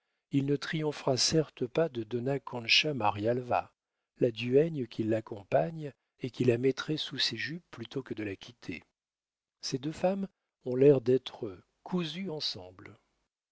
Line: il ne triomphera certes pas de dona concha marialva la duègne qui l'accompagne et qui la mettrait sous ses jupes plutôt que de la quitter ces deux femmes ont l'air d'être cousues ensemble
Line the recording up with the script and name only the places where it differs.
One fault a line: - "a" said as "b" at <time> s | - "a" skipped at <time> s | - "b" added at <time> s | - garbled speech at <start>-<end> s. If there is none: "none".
none